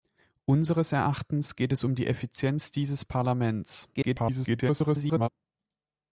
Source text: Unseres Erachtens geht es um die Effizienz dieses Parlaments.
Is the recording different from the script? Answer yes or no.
yes